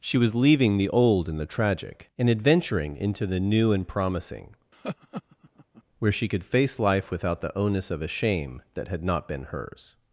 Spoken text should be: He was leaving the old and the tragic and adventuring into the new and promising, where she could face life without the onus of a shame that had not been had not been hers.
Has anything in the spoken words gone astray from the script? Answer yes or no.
yes